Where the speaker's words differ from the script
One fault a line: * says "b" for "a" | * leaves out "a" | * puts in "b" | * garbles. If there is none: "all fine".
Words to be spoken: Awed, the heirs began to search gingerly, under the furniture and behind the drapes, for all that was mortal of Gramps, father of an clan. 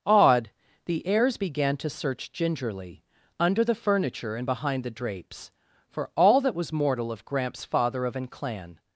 all fine